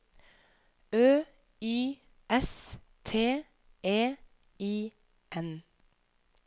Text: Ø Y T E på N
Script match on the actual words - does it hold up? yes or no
no